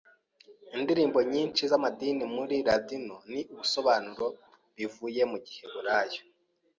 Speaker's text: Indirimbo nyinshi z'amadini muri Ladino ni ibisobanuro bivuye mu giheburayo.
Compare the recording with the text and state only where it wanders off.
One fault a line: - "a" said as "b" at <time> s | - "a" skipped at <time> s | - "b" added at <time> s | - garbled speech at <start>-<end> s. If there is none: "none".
none